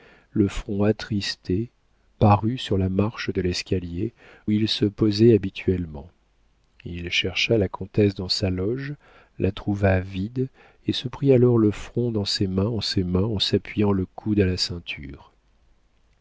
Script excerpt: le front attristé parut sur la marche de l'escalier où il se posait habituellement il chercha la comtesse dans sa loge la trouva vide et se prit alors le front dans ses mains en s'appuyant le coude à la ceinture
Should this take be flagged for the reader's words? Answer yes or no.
yes